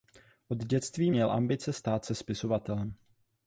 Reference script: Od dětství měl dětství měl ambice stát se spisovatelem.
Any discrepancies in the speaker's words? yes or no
yes